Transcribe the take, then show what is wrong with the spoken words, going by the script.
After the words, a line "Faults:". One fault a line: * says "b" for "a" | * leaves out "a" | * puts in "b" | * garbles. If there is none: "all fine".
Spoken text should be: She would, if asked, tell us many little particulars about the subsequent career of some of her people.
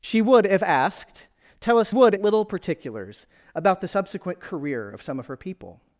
She would, if asked, tell us would little particulars about the subsequent career of some of her people.
Faults:
* says "would" for "many"